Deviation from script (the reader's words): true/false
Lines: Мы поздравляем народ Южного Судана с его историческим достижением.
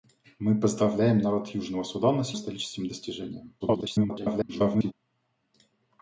true